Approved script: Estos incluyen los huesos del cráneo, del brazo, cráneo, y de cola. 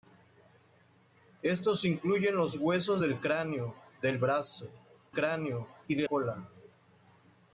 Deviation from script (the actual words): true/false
false